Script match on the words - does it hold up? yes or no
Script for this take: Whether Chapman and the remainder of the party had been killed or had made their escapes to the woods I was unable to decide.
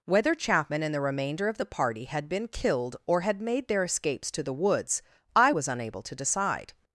yes